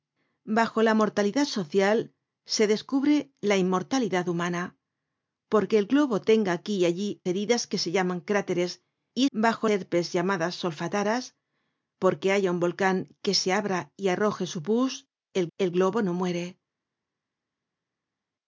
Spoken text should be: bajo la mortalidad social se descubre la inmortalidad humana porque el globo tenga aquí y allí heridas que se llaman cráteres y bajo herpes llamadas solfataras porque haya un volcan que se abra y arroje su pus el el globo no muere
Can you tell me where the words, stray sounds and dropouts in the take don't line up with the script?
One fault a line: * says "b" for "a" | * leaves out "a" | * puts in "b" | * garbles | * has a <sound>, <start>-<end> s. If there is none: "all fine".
all fine